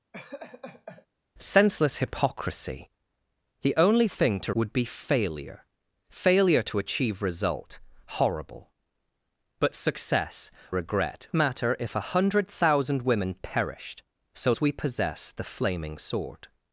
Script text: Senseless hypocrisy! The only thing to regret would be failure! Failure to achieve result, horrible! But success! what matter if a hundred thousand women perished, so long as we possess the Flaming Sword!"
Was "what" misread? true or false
true